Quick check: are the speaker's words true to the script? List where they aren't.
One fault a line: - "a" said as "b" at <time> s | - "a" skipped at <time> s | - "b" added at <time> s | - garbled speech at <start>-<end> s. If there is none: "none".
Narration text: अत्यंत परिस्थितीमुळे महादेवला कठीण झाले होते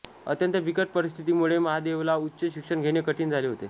- "बिकट" added at 0.6 s
- "उच्च शिक्षण घेणे" added at 2.2 s